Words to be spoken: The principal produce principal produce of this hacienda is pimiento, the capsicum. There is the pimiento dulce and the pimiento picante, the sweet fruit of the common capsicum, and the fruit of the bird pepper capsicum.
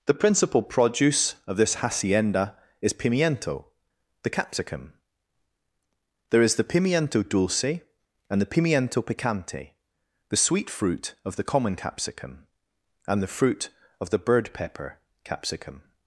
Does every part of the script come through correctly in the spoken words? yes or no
no